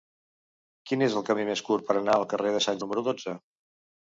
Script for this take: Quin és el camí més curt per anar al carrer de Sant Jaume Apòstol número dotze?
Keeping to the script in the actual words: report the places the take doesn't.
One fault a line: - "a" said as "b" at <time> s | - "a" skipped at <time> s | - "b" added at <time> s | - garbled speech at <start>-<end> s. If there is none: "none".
- "Jaume Apòstol" skipped at 2.8 s